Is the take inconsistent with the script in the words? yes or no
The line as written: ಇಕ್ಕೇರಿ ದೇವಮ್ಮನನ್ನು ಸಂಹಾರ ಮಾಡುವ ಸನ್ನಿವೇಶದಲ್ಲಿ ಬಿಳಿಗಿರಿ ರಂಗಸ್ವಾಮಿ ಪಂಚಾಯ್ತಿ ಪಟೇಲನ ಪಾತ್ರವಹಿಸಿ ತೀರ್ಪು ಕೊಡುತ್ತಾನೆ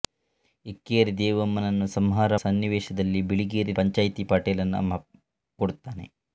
yes